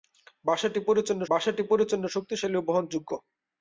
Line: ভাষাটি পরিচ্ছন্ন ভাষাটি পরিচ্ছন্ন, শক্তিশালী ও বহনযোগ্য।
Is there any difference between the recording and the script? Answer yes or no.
no